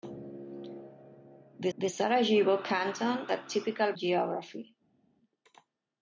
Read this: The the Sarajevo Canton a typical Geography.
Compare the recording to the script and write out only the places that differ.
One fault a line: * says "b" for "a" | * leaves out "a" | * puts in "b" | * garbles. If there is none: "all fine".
all fine